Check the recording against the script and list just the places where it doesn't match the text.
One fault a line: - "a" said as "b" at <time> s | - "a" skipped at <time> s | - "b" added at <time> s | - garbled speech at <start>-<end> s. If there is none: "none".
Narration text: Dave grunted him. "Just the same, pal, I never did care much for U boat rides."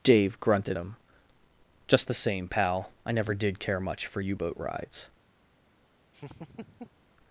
none